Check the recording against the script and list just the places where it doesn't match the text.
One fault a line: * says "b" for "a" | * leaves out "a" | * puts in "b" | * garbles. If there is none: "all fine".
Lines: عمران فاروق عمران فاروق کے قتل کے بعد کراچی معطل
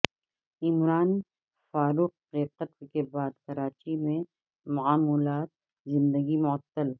* leaves out "عمران فاروق"
* puts in "میں معمولات زندگی"